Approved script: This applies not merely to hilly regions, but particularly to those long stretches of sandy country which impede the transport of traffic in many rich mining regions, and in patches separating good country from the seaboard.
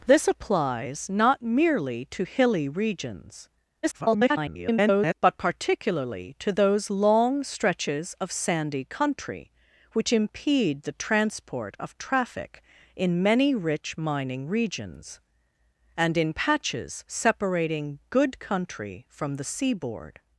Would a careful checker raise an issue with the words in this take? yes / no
yes